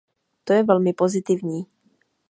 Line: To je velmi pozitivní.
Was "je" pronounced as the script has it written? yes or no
yes